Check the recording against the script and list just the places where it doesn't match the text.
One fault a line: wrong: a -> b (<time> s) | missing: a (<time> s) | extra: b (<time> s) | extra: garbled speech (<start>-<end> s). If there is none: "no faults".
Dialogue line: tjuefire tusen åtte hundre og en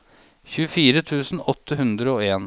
no faults